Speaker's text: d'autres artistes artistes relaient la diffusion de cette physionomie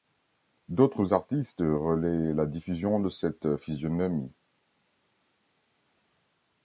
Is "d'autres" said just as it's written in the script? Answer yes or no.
yes